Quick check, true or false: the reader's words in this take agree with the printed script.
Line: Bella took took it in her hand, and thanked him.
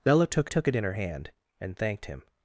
true